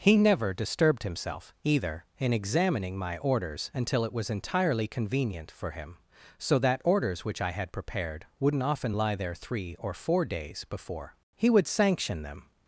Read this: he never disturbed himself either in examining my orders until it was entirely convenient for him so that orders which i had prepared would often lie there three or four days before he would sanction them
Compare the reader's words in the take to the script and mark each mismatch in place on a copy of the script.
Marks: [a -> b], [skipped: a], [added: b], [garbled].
he never disturbed himself either in examining my orders until it was entirely convenient for him so that orders which i had prepared [would -> wouldn't] often lie there three or four days before he would sanction them